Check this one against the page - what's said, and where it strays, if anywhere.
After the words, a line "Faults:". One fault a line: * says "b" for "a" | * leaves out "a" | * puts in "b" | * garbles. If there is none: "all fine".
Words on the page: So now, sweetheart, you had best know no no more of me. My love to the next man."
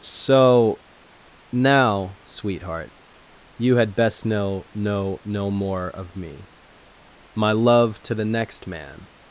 So now, sweetheart, you had best know no no more of me. My love to the next man."
Faults:
all fine